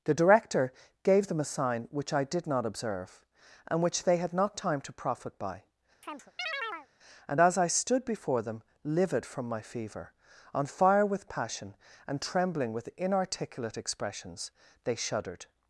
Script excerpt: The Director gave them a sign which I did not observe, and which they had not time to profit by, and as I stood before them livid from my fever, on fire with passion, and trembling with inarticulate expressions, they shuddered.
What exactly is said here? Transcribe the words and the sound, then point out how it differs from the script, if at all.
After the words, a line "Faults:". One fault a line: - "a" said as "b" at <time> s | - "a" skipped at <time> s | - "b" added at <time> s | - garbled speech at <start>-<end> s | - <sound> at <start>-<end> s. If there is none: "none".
The Director gave them a sign which I did not observe, and which they had not time to profit by, and as I stood before them livid from my fever, on fire with passion, and trembling with inarticulate expressions, they shuddered.
Faults:
- chirp at 6.0-6.9 s